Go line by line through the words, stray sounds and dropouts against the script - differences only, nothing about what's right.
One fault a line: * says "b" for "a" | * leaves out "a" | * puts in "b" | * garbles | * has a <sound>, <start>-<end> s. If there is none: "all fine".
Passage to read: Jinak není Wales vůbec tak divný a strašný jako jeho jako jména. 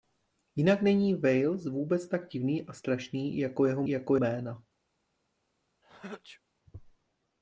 * has a sneeze, 5.8-6.4 s